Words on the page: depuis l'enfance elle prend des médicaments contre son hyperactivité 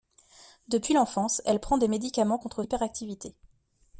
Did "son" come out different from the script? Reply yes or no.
yes